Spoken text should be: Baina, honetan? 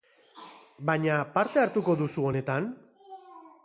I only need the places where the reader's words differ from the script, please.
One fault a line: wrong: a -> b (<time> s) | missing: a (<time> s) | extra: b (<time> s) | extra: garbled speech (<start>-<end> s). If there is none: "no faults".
extra: parte hartuko duzu (1.4 s)